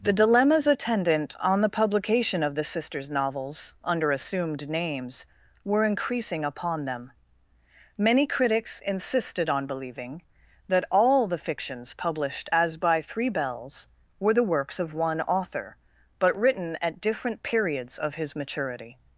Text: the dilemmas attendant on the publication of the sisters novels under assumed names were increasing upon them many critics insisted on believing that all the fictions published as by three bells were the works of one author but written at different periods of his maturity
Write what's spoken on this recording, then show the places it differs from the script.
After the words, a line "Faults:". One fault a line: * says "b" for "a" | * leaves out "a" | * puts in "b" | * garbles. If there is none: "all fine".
the dilemmas attendant on the publication of the sisters novels under assumed names were increasing upon them many critics insisted on believing that all the fictions published as by three bells were the works of one author but written at different periods of his maturity
Faults:
all fine